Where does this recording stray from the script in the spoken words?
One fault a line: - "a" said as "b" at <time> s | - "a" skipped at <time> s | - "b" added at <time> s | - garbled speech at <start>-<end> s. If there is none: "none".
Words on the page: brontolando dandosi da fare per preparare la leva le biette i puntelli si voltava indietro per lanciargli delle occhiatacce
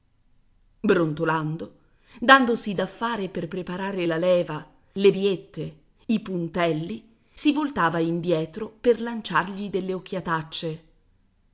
none